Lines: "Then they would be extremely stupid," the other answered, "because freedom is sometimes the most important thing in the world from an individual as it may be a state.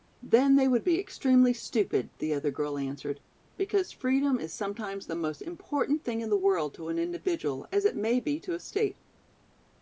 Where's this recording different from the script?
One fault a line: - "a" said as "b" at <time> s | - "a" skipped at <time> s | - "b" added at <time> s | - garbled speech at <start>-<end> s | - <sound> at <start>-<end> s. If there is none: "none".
- "girl" added at 2.5 s
- "from" said as "to" at 6.7 s
- "to" added at 8.4 s